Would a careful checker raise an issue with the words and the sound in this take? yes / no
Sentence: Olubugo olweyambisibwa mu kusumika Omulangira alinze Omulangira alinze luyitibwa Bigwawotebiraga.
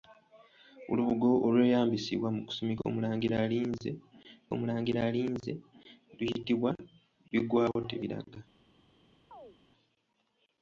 yes